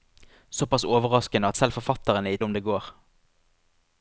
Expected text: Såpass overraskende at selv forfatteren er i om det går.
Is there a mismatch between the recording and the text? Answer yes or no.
no